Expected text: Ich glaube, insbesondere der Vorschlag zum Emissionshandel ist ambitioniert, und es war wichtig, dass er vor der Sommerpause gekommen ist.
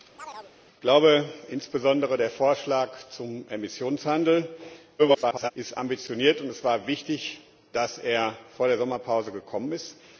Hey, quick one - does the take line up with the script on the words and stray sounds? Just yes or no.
no